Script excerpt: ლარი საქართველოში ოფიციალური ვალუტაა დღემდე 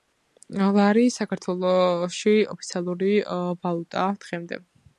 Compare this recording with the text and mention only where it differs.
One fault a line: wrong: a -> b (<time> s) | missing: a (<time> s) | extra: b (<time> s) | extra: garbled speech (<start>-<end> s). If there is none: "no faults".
no faults